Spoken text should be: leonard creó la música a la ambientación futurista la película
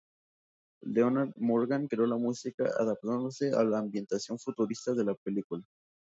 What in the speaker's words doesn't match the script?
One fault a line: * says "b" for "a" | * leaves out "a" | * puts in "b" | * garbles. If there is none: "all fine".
* puts in "morgan"
* puts in "adaptándose"
* puts in "de"